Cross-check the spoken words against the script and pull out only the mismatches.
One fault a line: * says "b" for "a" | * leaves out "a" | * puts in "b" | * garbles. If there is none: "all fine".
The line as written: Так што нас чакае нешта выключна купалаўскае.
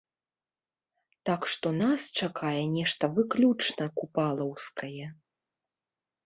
all fine